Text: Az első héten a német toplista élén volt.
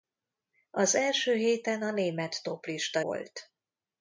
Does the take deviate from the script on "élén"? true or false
true